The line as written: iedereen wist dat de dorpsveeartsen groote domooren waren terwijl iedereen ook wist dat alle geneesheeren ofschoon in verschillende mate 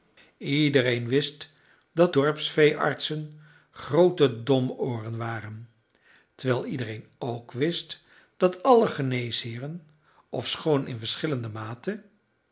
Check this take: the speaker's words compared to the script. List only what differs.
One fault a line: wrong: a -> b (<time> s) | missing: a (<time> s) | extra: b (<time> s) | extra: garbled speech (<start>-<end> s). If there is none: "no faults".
missing: de (2.1 s)